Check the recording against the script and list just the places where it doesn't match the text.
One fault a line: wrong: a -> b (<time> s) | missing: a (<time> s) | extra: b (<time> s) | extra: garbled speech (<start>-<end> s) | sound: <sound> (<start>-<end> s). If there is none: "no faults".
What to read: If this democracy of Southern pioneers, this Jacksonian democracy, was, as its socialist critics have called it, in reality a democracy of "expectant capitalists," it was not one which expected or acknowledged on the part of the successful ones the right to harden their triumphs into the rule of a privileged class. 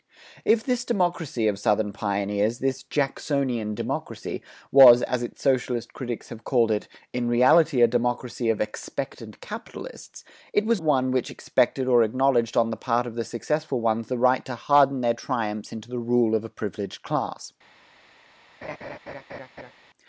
missing: not (10.8 s)
sound: laugh (18.6-19.7 s)